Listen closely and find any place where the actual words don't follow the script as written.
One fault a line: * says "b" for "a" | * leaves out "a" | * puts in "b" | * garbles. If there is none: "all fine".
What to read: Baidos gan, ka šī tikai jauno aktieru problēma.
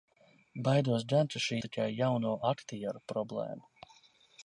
all fine